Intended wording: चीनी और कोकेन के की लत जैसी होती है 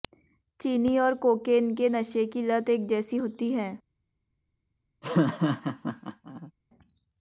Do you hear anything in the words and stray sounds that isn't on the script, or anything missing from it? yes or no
yes